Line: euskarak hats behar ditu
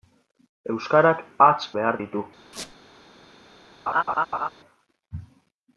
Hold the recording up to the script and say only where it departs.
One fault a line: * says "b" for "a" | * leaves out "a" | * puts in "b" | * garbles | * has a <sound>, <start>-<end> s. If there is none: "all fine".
* has a squeak, 2.5-2.8 s
* has a laugh, 3.9-4.5 s